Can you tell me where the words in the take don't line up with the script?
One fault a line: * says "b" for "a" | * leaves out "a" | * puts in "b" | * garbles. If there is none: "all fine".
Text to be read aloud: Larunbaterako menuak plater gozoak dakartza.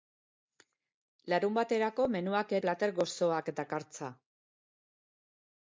all fine